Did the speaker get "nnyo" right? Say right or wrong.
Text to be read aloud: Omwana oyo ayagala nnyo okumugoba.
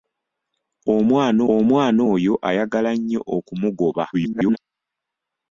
right